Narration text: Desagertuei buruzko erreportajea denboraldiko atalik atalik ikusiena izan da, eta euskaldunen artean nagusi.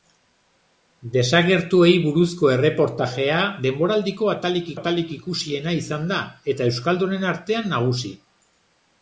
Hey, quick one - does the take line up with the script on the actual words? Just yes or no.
yes